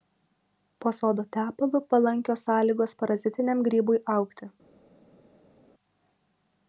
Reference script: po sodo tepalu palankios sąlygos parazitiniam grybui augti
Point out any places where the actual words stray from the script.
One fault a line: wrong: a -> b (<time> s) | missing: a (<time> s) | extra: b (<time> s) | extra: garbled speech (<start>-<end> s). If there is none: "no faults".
no faults